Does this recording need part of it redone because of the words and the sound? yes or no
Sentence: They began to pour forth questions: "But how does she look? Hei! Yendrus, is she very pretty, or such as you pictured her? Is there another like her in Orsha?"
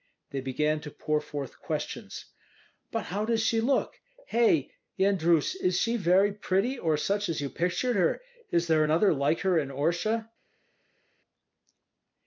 no